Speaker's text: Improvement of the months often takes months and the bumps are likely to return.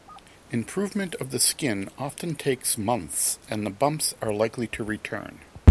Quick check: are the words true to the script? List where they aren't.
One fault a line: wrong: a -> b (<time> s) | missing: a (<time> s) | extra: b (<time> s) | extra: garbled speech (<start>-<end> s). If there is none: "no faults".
wrong: months -> skin (1.4 s)